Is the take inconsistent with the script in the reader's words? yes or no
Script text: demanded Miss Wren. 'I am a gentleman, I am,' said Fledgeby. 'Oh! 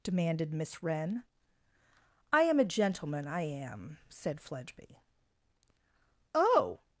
no